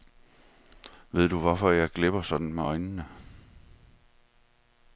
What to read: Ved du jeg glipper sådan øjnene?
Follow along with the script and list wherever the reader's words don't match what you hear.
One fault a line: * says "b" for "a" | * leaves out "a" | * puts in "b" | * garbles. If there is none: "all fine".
* puts in "hvorfor"
* puts in "med"